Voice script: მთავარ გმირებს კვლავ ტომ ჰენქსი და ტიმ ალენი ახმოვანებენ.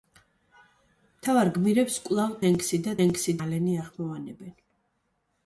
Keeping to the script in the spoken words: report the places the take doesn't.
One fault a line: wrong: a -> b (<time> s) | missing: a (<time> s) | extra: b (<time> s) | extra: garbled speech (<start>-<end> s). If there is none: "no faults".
missing: ტომ (2.3 s)
wrong: ტიმ -> ჰენქსი (3.0 s)